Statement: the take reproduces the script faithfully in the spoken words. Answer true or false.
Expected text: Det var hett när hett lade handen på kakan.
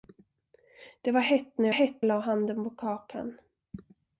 true